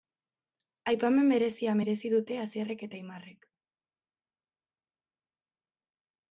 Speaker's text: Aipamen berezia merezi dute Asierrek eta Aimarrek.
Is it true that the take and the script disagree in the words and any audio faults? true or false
false